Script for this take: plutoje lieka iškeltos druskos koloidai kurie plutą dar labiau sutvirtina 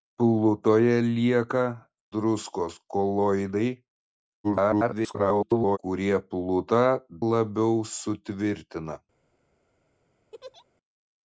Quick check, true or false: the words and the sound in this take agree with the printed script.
false